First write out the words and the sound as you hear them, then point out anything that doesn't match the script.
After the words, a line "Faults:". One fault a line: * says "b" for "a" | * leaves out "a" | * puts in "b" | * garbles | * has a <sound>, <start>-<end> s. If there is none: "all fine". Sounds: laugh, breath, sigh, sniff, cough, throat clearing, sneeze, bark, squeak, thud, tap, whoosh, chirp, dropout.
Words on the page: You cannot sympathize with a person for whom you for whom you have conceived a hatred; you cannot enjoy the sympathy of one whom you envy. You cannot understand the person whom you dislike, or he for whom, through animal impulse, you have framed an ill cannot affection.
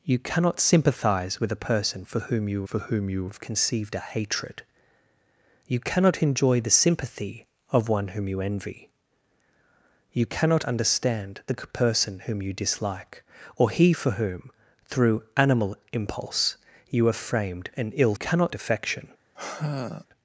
You cannot sympathize with a person for whom you for whom you have conceived a hatred; you cannot enjoy the sympathy of one whom you envy. You cannot understand the person whom you dislike, or he for whom, through animal impulse, you have framed an ill cannot affection.
Faults:
* has a sigh, 19.3-20.1 s